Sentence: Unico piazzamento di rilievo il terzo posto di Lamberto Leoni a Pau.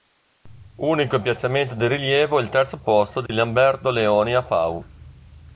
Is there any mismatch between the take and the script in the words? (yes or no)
no